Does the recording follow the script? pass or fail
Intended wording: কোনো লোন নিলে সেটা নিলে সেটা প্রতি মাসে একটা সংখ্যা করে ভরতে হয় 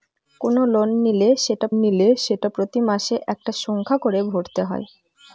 pass